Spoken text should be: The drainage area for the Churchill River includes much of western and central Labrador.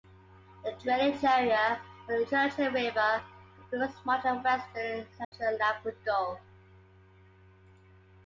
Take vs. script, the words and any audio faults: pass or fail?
fail